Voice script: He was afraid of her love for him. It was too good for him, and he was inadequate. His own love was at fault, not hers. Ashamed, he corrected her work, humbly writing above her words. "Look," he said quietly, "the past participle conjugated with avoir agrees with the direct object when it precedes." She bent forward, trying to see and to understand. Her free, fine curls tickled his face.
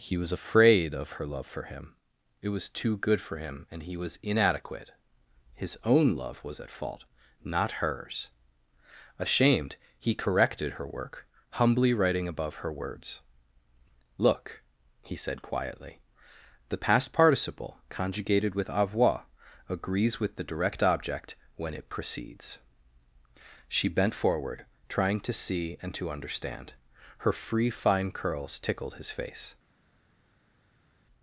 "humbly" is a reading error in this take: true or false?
false